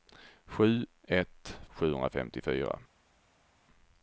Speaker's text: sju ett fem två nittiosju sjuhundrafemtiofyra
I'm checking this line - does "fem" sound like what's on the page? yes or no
no